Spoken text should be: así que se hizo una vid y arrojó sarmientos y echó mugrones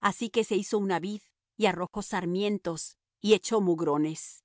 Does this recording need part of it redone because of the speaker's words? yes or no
no